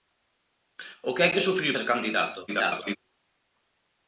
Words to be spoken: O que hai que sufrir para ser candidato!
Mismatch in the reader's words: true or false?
true